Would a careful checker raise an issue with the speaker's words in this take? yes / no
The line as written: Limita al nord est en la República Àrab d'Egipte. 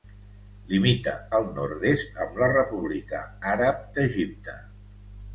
yes